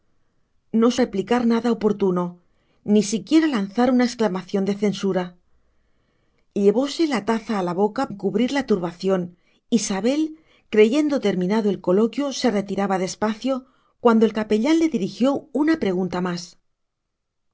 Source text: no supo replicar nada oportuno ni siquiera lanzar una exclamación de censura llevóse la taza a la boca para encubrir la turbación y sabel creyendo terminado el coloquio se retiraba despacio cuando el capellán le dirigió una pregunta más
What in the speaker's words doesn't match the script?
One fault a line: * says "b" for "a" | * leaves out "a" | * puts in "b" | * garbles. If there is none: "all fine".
* leaves out "supo"
* leaves out "para"